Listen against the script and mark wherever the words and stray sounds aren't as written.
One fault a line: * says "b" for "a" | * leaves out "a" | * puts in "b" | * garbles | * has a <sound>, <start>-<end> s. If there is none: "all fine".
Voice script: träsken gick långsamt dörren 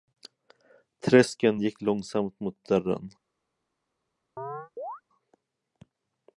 * puts in "mot"
* has a chirp, 4.4-5.0 s